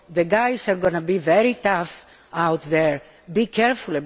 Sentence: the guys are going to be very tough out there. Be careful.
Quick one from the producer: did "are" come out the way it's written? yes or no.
yes